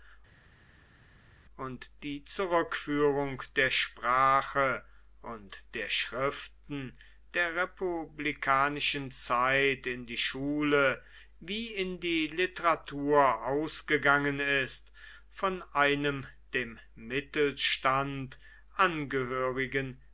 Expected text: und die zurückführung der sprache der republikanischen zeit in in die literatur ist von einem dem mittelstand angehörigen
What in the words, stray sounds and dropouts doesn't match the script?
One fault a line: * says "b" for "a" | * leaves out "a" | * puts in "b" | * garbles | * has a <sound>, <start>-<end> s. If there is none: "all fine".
* puts in "und"
* puts in "schriften der"
* puts in "die schule wie"
* puts in "ausgegangen"